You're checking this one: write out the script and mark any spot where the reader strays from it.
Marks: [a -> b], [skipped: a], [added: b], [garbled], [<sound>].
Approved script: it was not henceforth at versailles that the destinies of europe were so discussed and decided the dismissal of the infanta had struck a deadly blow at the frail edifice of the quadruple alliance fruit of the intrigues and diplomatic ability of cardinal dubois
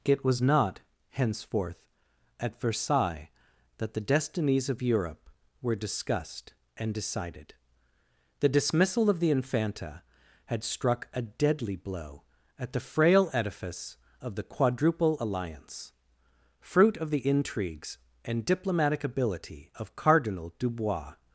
it was not henceforth at versailles that the destinies of europe were [skipped: so] discussed and decided the dismissal of the infanta had struck a deadly blow at the frail edifice of the quadruple alliance fruit of the intrigues and diplomatic ability of cardinal dubois